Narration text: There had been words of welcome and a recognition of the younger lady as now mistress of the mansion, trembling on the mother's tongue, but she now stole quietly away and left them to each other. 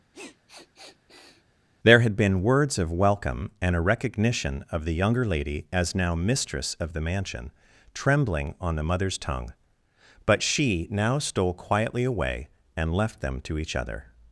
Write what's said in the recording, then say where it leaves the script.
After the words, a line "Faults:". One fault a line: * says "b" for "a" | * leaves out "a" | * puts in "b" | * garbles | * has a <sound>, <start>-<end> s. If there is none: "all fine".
There had been words of welcome and a recognition of the younger lady as now mistress of the mansion, trembling on the mother's tongue, but she now stole quietly away and left them to each other.
Faults:
* has a sniff, 0.1-1.4 s